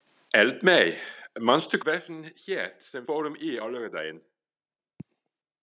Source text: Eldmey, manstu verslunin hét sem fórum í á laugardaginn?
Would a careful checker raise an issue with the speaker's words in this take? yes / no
no